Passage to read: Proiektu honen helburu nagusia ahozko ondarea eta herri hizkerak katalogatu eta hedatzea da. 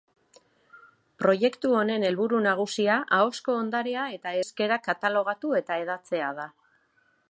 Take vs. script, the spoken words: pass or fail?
fail